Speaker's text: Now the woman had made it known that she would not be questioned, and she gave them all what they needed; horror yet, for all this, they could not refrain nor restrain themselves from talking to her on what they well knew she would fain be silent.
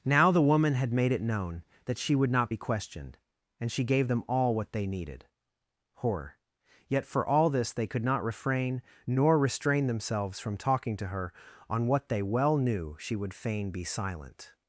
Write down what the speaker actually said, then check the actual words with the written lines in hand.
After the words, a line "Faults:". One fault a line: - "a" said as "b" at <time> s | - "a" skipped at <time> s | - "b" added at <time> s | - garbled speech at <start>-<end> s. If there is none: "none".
Now the woman had made it known that she would not be questioned, and she gave them all what they needed; horror yet, for all this, they could not refrain nor restrain themselves from talking to her on what they well knew she would fain be silent.
Faults:
none